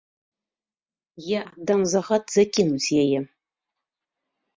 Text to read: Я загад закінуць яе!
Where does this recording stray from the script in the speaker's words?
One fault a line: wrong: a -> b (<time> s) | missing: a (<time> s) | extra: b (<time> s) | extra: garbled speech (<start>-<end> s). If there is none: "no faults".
extra: аддам (1.5 s)